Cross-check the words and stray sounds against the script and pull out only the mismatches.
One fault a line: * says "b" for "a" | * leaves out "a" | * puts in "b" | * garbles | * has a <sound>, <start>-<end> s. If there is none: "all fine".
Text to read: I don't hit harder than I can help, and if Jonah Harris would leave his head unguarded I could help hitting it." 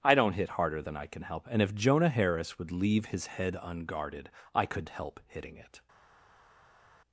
all fine